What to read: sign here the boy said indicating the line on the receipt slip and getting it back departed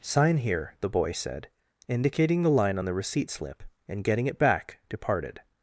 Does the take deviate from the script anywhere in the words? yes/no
no